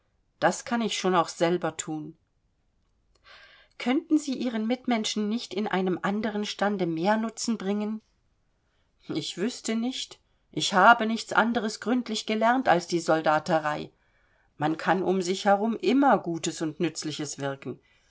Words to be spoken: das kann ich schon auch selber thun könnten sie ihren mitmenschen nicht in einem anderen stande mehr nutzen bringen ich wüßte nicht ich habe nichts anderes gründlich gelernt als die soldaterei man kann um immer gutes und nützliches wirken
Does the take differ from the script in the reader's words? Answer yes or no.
yes